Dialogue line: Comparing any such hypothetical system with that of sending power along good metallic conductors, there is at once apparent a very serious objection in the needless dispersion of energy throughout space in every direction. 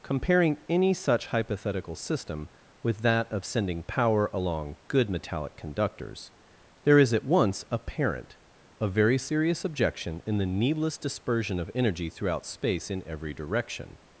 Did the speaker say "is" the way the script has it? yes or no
yes